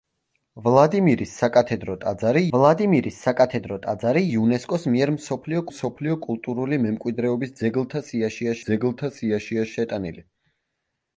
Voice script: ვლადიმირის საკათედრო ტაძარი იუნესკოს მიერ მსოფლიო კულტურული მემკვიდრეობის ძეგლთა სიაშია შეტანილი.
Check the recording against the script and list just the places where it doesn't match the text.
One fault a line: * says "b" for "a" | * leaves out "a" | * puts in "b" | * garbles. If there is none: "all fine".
* puts in "ვლადიმირის საკათედრო ტაძარი"
* puts in "მსოფლიო"
* puts in "ძეგლთა სიაშია"